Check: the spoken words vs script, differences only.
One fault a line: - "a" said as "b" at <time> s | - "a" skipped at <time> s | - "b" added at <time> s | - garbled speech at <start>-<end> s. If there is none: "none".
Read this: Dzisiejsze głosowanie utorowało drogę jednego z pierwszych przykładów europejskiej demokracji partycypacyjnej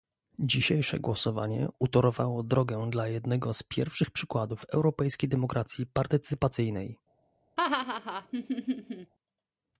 - "dla" added at 2.9 s